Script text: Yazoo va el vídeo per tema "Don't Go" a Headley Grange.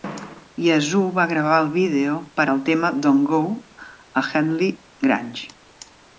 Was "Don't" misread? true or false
false